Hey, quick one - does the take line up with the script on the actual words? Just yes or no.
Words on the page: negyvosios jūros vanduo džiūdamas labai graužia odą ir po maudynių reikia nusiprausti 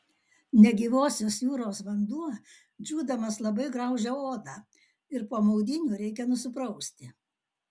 yes